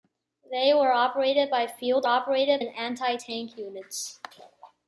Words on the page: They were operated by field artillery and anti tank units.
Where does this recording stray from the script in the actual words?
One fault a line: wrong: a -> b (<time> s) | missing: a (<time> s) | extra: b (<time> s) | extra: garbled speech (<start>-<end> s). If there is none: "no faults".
wrong: artillery -> operated (2.0 s)